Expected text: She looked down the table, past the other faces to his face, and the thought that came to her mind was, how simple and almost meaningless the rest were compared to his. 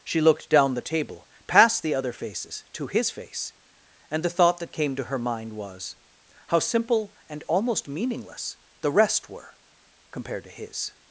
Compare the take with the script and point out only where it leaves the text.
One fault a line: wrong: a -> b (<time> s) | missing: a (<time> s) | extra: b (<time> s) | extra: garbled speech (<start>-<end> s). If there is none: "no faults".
no faults